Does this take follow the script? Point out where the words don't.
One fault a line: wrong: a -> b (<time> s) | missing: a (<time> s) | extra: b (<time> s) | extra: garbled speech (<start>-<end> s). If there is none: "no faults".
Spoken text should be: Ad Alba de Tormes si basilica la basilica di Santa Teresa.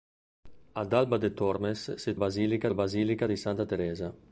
no faults